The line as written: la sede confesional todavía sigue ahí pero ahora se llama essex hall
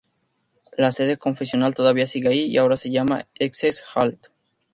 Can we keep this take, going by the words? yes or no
no